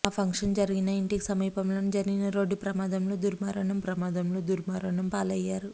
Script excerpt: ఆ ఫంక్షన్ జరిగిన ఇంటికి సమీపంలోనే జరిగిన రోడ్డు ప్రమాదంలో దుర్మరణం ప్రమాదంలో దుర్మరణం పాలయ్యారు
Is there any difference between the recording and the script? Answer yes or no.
no